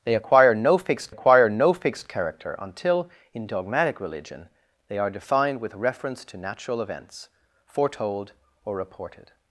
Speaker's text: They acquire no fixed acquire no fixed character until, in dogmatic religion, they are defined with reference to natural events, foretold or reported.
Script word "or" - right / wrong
right